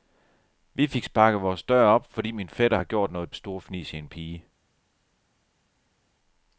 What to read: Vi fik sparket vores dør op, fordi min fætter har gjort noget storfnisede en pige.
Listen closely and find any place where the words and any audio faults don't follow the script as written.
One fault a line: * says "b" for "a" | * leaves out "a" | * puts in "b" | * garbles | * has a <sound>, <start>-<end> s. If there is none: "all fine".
all fine